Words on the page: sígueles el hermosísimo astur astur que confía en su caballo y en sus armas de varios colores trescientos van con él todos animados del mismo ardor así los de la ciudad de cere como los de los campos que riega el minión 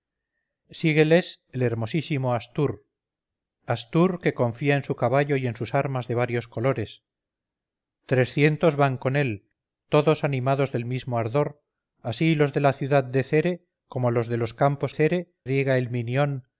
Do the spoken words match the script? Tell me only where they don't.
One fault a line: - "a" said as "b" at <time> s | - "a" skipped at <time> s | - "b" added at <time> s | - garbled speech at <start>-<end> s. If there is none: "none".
- "que" said as "cere" at 14.9 s